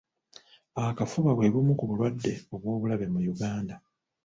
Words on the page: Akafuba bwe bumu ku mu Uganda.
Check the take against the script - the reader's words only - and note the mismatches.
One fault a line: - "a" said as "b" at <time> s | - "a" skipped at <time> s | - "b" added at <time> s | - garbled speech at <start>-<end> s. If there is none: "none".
- "bulwadde obw'obulabe" added at 1.9 s